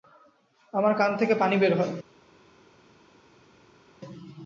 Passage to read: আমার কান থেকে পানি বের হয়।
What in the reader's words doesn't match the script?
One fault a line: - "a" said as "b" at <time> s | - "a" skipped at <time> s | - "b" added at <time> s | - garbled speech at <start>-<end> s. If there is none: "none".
none